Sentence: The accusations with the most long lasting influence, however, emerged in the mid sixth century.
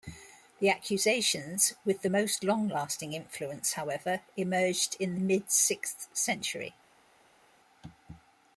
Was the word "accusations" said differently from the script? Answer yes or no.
no